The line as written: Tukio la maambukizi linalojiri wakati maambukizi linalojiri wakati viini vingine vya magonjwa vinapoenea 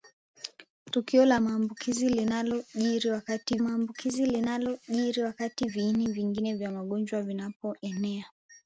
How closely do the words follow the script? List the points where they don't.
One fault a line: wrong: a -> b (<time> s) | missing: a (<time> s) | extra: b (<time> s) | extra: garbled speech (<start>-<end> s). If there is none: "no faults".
no faults